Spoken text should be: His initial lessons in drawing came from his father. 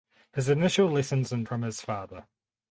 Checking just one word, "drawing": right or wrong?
wrong